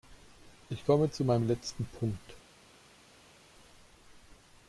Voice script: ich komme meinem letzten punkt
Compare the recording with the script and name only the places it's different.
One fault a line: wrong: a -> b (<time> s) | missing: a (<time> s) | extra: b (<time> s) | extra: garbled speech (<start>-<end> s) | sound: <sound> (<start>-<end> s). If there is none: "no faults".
extra: zu (1.1 s)